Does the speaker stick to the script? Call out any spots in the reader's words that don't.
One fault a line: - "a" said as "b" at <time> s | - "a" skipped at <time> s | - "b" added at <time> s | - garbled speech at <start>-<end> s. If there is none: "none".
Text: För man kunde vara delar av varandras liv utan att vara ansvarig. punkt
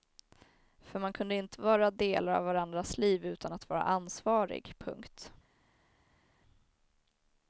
- "inte" added at 1.4 s